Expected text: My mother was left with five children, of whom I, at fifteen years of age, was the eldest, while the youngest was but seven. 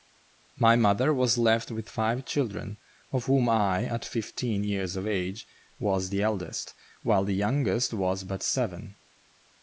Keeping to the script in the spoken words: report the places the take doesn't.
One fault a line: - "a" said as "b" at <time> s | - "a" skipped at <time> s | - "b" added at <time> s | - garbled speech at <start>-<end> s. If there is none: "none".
none